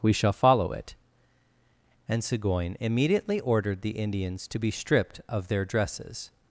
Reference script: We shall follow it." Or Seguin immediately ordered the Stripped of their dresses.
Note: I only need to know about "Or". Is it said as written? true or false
false